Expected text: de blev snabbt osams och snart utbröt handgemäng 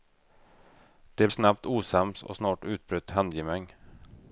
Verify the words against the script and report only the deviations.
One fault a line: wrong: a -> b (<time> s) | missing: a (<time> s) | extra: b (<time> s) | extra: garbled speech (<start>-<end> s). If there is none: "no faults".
missing: blev (1.3 s)